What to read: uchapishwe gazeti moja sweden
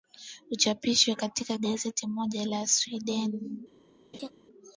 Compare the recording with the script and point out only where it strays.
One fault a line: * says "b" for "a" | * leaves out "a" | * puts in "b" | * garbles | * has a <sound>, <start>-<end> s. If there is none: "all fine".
* puts in "katika"
* puts in "la"
* has a laugh, 4.1-4.3 s